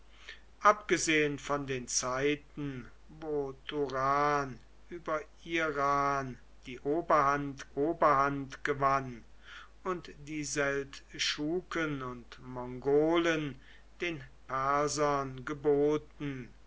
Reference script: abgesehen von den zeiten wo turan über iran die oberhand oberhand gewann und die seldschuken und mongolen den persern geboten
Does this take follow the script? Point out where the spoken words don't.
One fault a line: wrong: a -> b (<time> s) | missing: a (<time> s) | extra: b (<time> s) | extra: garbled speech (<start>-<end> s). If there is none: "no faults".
no faults